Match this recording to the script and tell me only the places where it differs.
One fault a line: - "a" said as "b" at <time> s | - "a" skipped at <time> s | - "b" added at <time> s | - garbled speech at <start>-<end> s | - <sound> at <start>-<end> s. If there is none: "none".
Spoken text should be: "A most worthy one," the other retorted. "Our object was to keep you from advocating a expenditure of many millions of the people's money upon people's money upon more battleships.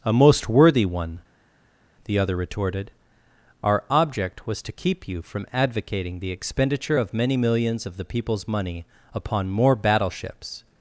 - "a" said as "the" at 6.2 s
- "people's money upon" skipped at 9.5 s